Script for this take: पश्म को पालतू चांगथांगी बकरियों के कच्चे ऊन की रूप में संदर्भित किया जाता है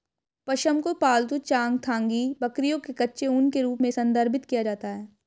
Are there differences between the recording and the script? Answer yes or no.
yes